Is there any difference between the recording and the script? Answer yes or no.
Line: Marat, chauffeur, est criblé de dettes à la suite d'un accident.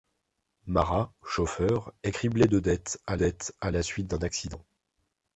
yes